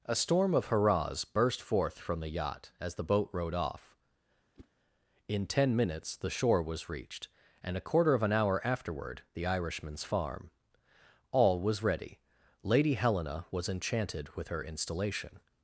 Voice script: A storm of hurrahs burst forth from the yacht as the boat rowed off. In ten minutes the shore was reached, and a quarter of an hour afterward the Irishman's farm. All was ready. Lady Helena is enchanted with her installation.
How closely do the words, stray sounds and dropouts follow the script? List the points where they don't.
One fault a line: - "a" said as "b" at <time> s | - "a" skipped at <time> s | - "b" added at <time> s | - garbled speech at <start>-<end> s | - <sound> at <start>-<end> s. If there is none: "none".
- whoosh at 4.5-4.7 s
- "is" said as "was" at 13.5 s